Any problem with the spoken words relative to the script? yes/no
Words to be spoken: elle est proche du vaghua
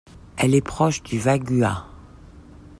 no